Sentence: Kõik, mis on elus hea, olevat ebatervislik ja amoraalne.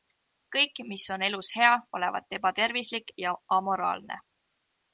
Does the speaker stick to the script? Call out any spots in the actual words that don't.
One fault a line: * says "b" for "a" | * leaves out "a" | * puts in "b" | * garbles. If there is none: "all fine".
all fine